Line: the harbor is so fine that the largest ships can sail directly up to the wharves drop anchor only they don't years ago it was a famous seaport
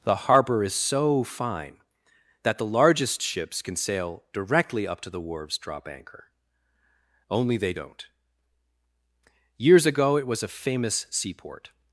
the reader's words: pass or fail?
pass